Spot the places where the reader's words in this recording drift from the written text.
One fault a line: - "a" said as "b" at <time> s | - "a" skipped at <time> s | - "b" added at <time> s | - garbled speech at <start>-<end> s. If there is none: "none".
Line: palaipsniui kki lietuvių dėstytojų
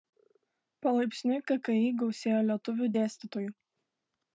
- "gausėjo" added at 2.0 s